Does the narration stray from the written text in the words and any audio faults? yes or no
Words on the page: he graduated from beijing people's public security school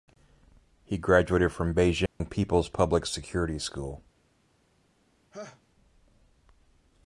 yes